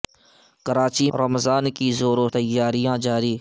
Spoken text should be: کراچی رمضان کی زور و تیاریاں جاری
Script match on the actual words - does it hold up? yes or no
yes